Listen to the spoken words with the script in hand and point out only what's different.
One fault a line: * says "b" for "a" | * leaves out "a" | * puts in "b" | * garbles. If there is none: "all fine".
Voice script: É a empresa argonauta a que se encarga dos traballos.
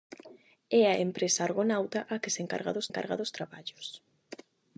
* puts in "encarga dos"